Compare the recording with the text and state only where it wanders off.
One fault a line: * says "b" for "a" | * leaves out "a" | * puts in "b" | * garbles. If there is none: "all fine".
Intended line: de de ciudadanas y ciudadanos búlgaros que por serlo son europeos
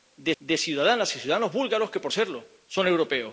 all fine